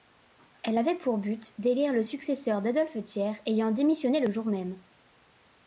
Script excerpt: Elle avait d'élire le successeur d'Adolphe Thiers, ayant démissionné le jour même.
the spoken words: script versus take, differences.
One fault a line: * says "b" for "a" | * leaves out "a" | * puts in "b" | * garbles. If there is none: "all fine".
* puts in "pour but"